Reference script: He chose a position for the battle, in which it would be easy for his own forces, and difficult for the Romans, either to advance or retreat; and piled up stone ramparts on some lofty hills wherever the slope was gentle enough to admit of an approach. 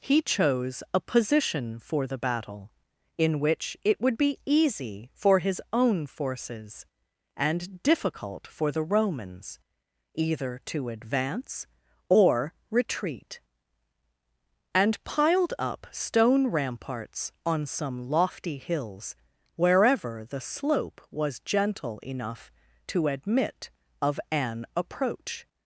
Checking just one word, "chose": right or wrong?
right